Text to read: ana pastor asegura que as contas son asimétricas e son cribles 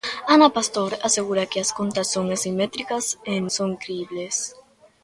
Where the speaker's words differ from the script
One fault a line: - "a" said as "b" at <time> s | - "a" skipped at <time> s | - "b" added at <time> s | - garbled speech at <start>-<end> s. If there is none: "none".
none